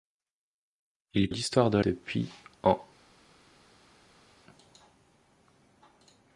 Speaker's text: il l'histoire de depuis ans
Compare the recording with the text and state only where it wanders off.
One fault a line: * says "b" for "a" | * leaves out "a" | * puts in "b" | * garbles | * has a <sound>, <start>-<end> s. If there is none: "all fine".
all fine